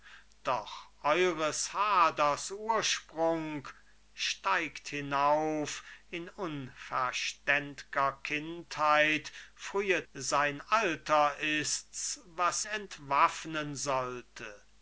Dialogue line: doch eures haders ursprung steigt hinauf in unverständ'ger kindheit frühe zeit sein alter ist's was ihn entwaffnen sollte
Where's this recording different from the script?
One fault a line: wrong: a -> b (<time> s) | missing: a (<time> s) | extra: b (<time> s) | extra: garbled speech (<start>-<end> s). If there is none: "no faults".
missing: zeit (10.1 s)
missing: ihn (12.6 s)